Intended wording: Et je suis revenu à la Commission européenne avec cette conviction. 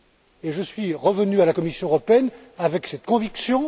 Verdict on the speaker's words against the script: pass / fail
pass